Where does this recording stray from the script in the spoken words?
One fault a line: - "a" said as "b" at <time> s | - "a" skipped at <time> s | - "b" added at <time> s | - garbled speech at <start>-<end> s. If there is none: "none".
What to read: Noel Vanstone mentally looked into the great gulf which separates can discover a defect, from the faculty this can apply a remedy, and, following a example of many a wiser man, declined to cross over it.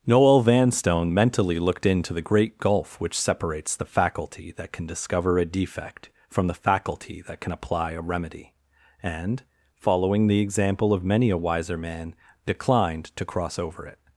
- "the faculty that" added at 3.8 s
- "this" said as "that" at 7.2 s
- "a" said as "the" at 10.3 s